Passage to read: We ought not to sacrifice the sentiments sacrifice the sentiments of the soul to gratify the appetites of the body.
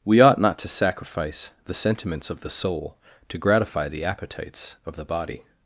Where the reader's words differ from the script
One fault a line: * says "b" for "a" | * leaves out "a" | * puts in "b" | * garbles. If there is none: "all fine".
* leaves out "sacrifice the sentiments"